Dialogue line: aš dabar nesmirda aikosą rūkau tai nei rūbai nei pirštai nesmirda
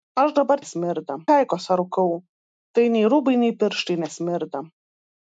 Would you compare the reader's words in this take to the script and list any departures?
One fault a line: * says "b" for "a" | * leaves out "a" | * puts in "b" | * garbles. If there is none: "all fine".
all fine